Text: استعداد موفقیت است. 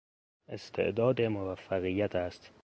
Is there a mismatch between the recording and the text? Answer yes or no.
no